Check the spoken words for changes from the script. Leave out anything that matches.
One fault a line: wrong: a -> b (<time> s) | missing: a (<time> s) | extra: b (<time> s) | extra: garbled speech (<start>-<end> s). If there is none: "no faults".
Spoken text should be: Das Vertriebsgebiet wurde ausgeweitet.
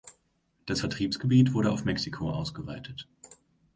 extra: auf Mexiko (1.7 s)